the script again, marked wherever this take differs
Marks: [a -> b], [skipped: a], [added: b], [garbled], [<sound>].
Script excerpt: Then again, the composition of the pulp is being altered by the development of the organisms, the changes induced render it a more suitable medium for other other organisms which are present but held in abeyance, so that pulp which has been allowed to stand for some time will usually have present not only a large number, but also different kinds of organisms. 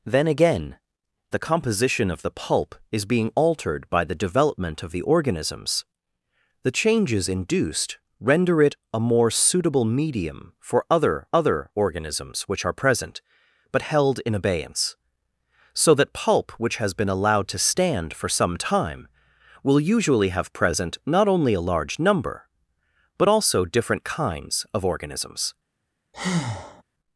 Then again, the composition of the pulp is being altered by the development of the organisms, the changes induced render it a more suitable medium for other other organisms which are present but held in abeyance, so that pulp which has been allowed to stand for some time will usually have present not only a large number, but also different kinds of organisms. [breath]